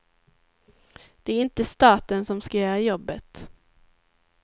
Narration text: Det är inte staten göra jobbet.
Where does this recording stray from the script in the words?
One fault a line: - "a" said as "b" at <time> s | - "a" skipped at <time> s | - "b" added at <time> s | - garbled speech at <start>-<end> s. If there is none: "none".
- "som ska" added at 2.2 s